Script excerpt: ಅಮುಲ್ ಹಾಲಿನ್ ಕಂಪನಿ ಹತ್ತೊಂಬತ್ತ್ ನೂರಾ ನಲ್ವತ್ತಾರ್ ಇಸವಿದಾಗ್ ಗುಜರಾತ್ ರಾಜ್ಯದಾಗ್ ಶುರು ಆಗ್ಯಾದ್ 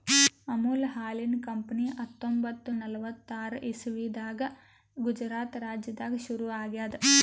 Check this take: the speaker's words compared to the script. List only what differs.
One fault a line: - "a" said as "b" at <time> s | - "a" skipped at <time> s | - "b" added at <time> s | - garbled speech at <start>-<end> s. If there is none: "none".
- "ನೂರಾ" skipped at 2.7 s